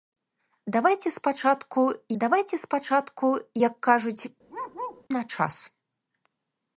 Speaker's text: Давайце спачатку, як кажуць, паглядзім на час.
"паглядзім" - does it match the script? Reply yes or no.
no